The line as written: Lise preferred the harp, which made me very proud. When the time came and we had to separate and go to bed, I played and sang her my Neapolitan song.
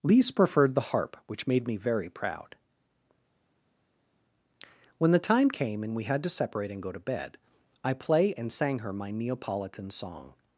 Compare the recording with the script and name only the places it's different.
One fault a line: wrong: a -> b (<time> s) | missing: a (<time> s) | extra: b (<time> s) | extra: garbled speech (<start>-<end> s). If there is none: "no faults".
wrong: played -> play (7.9 s)